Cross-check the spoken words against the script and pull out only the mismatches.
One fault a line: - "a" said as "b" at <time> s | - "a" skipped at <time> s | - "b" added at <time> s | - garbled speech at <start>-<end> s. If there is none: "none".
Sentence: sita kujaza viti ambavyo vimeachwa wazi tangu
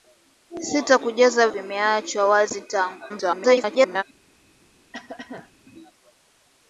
- "viti ambavyo" skipped at 1.5 s
- garbled speech at 3.1-4.0 s